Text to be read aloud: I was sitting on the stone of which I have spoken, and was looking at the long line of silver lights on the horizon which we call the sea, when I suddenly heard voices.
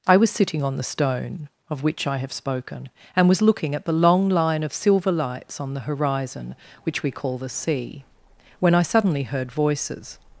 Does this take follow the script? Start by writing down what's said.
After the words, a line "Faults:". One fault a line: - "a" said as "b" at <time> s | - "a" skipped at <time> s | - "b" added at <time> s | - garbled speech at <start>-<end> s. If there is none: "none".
I was sitting on the stone of which I have spoken, and was looking at the long line of silver lights on the horizon which we call the sea, when I suddenly heard voices.
Faults:
none